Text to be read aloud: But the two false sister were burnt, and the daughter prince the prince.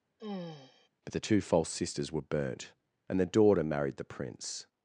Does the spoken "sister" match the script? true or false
false